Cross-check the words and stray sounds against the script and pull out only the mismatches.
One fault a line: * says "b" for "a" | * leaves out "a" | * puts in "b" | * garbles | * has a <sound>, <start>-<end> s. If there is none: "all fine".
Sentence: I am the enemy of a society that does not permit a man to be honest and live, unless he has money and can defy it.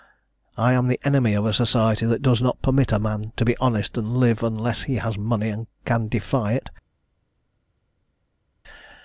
all fine